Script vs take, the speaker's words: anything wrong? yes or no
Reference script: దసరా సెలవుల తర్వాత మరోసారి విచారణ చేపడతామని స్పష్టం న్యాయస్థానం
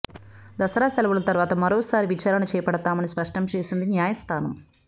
yes